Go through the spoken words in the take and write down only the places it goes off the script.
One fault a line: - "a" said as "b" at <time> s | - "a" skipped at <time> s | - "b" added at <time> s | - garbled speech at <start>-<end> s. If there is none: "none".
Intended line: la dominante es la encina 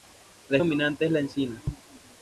none